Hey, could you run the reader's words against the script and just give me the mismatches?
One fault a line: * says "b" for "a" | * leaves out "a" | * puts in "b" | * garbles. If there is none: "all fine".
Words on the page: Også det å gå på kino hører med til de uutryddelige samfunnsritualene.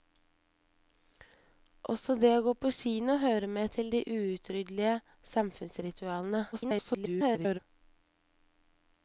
* garbles